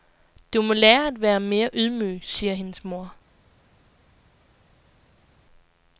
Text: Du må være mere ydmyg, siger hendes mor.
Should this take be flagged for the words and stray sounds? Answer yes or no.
yes